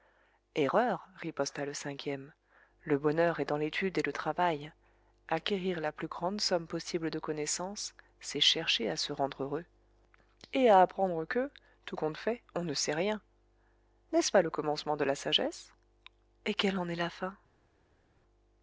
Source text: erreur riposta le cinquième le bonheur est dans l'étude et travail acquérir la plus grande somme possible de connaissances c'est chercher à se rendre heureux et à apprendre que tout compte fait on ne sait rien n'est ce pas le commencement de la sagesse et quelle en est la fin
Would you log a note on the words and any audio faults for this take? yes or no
yes